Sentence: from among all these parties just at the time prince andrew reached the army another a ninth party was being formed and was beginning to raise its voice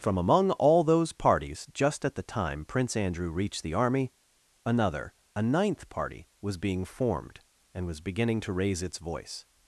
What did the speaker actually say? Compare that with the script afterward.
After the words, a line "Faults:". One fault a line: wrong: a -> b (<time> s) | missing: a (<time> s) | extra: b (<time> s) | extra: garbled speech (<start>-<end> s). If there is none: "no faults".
from among all those parties just at the time prince andrew reached the army another a ninth party was being formed and was beginning to raise its voice
Faults:
wrong: these -> those (0.8 s)